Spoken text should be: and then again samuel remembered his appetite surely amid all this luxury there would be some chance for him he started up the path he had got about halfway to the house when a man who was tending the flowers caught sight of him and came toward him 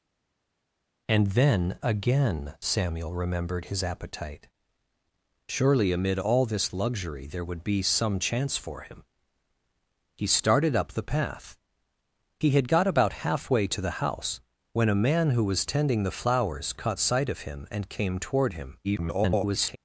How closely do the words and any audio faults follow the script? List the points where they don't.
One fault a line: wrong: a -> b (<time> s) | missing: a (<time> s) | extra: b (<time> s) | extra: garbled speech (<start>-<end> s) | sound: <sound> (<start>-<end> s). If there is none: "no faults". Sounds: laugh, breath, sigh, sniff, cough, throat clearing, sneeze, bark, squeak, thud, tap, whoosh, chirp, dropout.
extra: garbled speech (18.8-19.8 s)